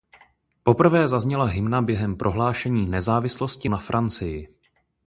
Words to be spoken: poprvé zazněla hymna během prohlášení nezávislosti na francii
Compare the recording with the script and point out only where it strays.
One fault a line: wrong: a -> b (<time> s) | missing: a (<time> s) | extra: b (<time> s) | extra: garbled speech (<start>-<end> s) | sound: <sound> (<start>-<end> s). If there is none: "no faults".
no faults